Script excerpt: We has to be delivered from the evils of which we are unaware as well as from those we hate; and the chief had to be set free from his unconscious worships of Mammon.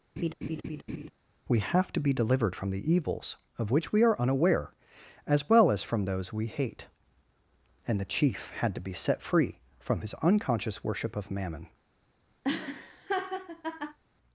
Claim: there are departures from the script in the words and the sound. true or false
true